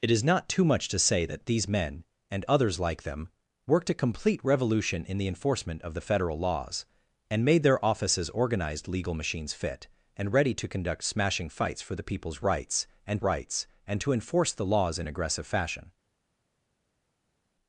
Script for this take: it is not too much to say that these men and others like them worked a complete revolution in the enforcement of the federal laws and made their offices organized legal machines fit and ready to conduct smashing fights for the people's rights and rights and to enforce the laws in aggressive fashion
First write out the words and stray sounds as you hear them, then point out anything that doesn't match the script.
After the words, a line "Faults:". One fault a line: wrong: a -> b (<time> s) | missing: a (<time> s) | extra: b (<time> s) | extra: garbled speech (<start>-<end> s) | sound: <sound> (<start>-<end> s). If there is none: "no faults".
it is not too much to say that these men and others like them worked a complete revolution in the enforcement of the federal laws and made their offices organized legal machines fit and ready to conduct smashing fights for the people's rights and rights and to enforce the laws in aggressive fashion
Faults:
no faults